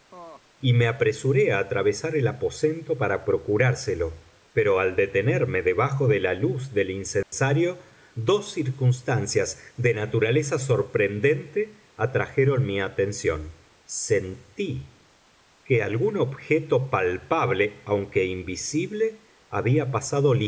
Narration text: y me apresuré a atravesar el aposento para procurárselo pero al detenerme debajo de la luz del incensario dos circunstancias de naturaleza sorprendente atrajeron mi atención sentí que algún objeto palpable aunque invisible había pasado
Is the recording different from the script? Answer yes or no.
no